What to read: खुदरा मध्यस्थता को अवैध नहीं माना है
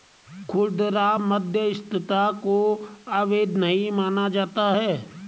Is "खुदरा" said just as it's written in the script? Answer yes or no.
yes